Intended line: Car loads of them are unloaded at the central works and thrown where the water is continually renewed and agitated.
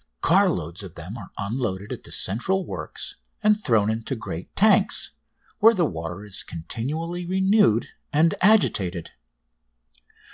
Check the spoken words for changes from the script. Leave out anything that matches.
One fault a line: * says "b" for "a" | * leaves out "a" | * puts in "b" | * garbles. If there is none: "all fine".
* puts in "into great tanks"